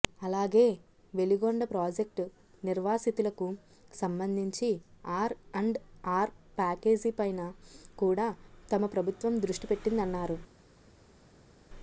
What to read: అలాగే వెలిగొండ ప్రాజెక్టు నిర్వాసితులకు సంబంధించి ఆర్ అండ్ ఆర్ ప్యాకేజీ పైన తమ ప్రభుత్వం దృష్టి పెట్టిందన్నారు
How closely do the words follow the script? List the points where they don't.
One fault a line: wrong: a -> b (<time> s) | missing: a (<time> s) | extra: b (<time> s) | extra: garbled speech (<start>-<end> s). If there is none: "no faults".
extra: కూడా (8.0 s)